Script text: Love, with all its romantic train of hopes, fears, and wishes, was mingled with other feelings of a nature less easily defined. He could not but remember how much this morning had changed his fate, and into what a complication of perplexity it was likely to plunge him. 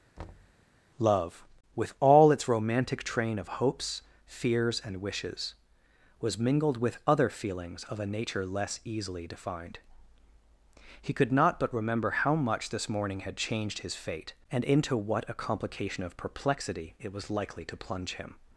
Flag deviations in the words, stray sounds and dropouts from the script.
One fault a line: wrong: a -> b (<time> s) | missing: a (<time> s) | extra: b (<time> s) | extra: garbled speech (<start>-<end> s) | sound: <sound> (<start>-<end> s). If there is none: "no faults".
sound: thud (0.2-0.6 s)